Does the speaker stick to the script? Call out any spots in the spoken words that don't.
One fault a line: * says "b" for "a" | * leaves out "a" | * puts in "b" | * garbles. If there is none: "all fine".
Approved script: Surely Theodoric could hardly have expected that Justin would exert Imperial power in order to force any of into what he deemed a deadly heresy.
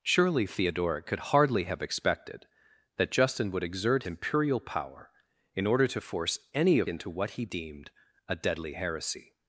all fine